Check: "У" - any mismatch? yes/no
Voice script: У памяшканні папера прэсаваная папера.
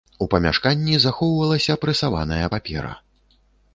no